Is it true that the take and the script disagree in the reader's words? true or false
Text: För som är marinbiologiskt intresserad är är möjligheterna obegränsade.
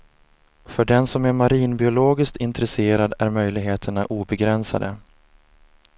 true